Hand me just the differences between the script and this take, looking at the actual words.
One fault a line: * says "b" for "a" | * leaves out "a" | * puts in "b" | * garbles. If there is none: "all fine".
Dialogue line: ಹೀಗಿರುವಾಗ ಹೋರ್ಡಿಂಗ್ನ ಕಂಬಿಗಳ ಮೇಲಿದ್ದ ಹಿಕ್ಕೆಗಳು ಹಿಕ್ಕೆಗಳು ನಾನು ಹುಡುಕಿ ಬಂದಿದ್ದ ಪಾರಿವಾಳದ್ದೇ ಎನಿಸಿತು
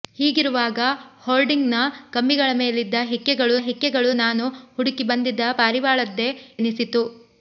all fine